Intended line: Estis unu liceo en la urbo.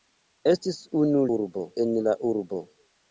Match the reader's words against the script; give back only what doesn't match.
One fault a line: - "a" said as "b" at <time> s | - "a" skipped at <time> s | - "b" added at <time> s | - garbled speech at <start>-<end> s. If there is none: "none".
- "liceo" said as "urbo" at 1.4 s